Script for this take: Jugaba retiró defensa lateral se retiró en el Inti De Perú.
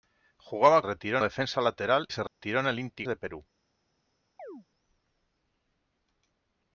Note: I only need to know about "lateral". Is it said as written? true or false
true